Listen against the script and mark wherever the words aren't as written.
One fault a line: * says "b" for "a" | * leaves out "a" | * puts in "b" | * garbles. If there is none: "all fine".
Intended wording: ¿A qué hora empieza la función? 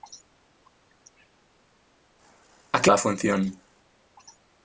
* leaves out "hora empieza"